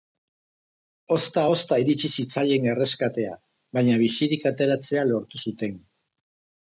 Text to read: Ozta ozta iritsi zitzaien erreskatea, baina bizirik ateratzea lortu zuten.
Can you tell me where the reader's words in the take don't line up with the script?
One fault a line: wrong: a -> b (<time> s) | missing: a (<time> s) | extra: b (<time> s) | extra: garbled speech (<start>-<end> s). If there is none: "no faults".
no faults